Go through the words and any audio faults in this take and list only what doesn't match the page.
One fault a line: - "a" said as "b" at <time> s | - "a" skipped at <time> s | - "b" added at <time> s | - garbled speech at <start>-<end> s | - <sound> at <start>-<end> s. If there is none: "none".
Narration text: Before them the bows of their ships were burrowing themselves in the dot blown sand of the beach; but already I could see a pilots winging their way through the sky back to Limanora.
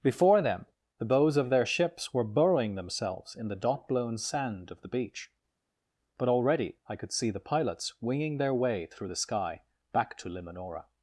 - "a" said as "the" at 7.3 s